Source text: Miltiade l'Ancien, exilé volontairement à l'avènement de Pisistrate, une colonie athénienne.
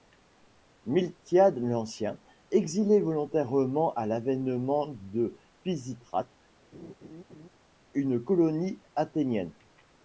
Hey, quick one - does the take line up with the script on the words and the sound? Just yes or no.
no